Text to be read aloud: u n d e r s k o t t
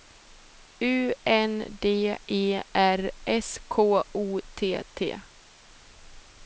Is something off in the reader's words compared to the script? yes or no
no